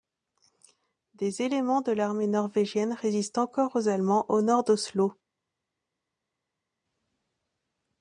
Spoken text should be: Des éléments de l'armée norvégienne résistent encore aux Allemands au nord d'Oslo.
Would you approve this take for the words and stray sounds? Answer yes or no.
yes